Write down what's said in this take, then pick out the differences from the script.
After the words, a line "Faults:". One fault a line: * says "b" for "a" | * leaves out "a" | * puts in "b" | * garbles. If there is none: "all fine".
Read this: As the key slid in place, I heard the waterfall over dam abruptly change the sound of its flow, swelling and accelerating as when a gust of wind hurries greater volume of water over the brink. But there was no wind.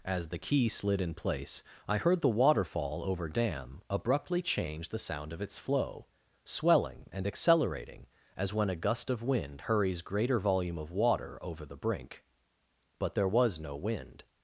As the key slid in place, I heard the waterfall over dam abruptly change the sound of its flow, swelling and accelerating as when a gust of wind hurries greater volume of water over the brink. But there was no wind.
Faults:
all fine